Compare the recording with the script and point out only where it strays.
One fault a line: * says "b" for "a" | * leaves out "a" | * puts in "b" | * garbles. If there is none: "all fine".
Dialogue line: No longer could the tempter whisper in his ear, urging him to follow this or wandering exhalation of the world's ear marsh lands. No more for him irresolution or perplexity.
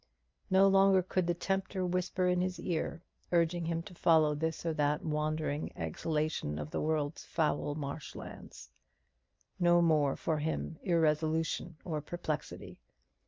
* puts in "that"
* says "foul" for "ear"